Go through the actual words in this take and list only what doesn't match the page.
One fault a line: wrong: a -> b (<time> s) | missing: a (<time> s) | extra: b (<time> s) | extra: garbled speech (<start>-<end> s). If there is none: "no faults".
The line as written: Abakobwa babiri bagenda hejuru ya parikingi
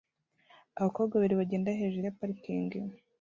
no faults